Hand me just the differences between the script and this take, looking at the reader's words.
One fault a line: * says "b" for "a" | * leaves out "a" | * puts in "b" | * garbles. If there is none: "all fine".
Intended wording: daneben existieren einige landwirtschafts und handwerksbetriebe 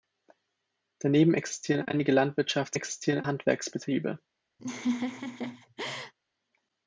* says "existieren" for "und"